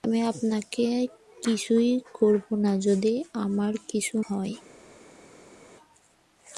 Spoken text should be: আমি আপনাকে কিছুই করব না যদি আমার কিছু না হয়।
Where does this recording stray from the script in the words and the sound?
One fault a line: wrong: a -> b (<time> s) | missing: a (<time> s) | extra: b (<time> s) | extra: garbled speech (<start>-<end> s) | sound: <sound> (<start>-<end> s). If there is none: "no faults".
missing: না (4.2 s)